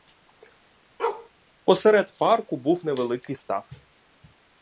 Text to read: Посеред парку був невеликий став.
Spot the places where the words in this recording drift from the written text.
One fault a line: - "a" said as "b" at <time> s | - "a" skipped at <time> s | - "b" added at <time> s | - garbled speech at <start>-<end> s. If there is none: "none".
none